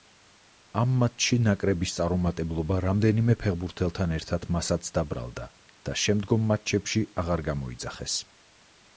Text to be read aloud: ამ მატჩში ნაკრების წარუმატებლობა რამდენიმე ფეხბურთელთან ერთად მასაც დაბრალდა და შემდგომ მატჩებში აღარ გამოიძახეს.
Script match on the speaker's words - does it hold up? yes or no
yes